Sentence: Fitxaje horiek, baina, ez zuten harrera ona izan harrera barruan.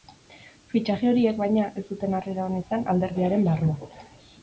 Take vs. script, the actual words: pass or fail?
fail